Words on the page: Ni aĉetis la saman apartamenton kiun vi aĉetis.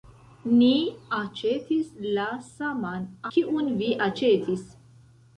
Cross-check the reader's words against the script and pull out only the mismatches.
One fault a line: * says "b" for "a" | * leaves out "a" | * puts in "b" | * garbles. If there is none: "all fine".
* leaves out "apartamenton"